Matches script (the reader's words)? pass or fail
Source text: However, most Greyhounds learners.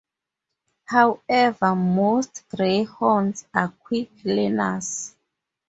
fail